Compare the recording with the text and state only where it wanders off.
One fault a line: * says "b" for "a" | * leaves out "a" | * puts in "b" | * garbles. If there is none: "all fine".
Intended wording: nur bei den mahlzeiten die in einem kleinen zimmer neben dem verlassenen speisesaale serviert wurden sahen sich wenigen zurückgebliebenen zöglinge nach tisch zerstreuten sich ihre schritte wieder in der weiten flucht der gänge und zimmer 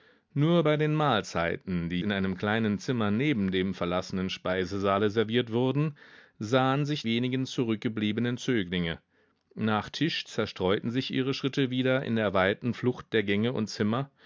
all fine